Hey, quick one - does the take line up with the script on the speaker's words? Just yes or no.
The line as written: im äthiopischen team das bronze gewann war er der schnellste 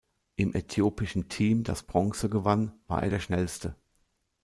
yes